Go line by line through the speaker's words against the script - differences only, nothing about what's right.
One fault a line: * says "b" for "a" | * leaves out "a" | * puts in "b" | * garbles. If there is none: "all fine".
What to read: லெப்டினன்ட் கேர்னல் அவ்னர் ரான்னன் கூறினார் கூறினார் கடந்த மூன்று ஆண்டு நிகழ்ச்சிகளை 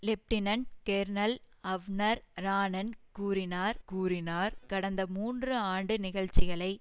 all fine